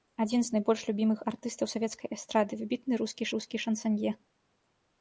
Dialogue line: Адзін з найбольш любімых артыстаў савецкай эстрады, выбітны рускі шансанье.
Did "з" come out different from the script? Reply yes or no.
no